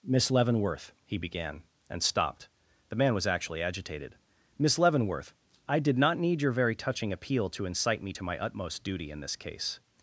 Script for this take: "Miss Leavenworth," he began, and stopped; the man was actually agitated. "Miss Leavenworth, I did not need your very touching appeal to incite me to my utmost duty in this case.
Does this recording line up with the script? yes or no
yes